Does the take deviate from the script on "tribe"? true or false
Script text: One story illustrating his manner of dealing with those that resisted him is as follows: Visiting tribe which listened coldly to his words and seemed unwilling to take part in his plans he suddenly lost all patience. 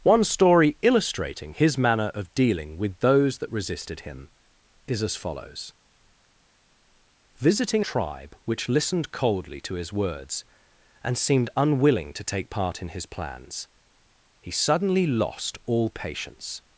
false